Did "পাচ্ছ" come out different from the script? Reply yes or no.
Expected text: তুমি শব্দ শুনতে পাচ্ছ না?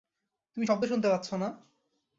no